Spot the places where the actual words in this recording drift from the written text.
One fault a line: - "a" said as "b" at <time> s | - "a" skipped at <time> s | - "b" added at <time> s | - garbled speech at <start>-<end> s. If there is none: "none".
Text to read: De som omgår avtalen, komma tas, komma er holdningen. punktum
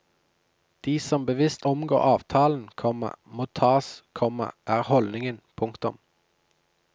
- "bevisst" added at 1.2 s
- "må" added at 3.2 s